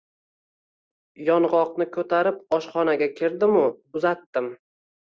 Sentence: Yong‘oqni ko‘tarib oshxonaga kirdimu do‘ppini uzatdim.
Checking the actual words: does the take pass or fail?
fail